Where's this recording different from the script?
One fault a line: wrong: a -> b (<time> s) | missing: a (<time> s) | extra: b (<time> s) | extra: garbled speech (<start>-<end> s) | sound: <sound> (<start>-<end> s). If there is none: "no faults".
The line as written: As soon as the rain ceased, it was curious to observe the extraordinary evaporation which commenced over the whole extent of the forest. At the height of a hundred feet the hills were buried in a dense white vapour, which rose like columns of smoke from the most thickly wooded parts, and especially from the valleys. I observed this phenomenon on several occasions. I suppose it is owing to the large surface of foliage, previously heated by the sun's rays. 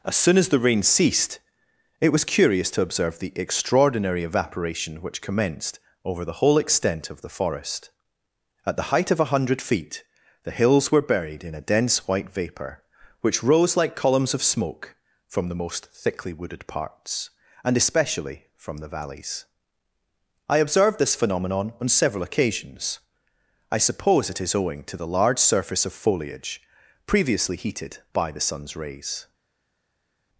no faults